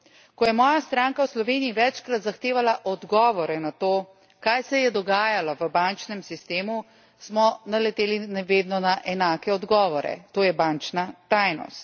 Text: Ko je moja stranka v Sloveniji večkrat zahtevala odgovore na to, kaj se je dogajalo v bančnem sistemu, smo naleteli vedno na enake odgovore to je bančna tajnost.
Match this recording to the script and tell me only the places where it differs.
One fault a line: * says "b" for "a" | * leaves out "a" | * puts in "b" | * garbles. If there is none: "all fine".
all fine